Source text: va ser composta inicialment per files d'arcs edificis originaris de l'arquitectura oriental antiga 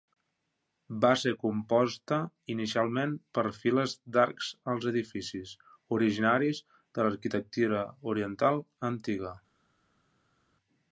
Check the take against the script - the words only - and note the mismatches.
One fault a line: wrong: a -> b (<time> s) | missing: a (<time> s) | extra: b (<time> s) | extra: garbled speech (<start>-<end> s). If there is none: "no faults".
extra: als (4.7 s)